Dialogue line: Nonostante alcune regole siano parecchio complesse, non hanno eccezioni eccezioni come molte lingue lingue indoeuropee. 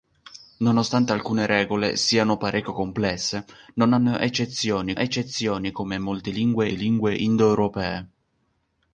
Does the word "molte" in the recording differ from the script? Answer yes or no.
no